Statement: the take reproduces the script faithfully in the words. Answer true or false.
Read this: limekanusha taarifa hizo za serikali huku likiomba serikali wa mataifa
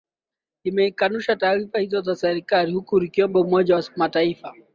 false